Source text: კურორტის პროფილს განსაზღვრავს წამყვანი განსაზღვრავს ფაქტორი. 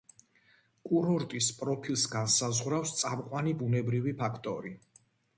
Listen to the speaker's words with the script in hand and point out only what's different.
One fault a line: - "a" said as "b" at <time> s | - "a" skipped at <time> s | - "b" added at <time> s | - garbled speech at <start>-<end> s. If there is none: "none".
- "განსაზღვრავს" said as "ბუნებრივი" at 3.6 s